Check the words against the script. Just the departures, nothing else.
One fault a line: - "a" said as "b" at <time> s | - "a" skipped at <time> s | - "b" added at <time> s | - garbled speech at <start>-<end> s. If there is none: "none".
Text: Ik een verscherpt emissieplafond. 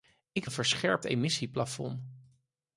none